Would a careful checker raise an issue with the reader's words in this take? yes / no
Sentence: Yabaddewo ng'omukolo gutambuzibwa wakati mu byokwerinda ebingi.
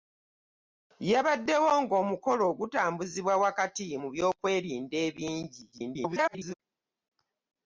yes